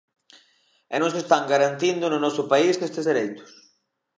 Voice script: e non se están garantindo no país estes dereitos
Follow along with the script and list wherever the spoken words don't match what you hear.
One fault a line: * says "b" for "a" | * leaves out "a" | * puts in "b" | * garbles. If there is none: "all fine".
* puts in "noso"